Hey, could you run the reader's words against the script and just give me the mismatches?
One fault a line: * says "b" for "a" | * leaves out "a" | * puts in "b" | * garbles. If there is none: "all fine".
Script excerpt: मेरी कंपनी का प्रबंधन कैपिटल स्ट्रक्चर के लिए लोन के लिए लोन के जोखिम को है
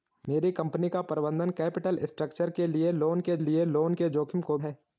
all fine